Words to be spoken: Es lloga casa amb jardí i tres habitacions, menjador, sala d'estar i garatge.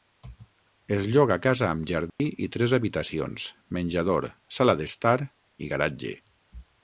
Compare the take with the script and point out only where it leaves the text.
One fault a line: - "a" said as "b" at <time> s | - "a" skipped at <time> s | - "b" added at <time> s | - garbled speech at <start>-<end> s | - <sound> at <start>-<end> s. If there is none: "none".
- dropout at 2.1-2.2 s